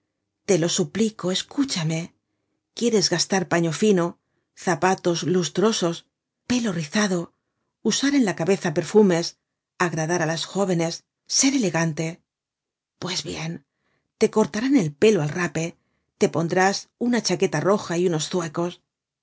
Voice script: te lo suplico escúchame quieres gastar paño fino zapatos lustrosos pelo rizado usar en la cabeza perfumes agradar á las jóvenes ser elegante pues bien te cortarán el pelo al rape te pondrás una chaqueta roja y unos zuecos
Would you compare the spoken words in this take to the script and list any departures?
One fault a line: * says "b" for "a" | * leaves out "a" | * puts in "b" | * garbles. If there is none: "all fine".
all fine